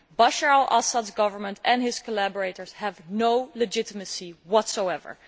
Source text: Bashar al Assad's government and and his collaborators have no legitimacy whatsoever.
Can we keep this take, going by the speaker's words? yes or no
no